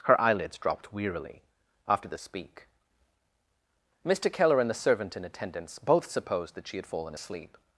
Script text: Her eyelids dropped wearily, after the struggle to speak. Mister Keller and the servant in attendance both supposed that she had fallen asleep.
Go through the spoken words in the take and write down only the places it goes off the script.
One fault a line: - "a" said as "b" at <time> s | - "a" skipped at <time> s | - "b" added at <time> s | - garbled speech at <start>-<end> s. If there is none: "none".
- "struggle to" skipped at 2.2 s